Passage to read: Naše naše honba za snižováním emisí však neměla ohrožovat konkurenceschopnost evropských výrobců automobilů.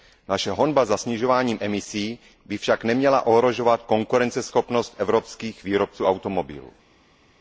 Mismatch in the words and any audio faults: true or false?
true